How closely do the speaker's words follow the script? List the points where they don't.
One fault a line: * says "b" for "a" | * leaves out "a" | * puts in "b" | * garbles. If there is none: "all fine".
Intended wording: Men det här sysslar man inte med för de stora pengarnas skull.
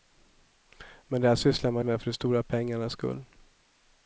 * leaves out "inte"